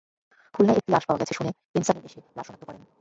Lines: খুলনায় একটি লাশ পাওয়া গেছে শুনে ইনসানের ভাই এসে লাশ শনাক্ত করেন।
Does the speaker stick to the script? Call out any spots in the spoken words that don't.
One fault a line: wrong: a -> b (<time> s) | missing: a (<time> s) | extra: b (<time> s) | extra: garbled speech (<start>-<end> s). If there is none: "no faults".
missing: ভাই (2.0 s)